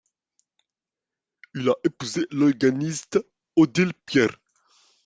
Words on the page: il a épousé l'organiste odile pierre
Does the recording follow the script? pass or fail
pass